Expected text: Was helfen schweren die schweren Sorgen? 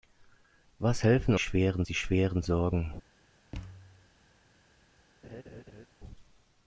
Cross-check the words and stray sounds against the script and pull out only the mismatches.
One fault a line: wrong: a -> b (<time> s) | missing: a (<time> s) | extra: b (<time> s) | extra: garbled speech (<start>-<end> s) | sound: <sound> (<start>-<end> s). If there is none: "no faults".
sound: thud (3.5-4.1 s)
sound: laugh (5.2-5.9 s)